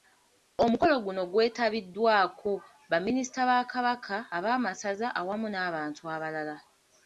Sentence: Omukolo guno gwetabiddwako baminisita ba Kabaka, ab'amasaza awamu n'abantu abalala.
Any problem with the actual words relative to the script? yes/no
no